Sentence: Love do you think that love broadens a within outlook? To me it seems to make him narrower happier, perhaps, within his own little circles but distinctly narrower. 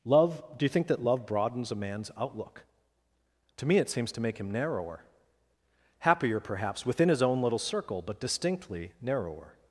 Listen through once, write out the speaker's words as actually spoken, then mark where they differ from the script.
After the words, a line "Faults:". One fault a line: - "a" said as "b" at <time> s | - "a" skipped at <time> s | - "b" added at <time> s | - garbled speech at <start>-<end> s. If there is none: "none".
Love do you think that love broadens a man's outlook? To me it seems to make him narrower happier, perhaps, within his own little circle but distinctly narrower.
Faults:
- "within" said as "man's" at 1.8 s
- "circles" said as "circle" at 7.6 s